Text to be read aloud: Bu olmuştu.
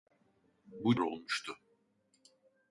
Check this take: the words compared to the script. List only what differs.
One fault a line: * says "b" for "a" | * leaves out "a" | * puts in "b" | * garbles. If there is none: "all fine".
all fine